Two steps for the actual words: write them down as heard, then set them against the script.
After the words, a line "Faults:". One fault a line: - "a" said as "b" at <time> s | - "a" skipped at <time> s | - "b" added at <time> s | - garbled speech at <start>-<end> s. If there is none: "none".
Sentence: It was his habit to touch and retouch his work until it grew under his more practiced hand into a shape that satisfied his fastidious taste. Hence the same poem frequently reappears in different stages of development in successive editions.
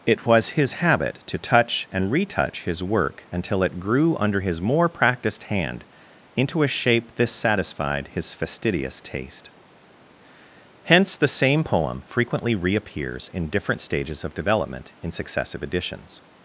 It was his habit to touch and retouch his work until it grew under his more practiced hand into a shape this satisfied his fastidious taste. Hence the same poem frequently reappears in different stages of development in successive editions.
Faults:
- "that" said as "this" at 7.2 s